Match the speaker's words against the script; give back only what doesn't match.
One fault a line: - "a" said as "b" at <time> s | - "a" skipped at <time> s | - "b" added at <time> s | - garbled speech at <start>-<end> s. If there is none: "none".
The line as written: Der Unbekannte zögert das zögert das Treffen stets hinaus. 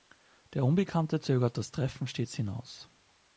- "zögert das" skipped at 1.7 s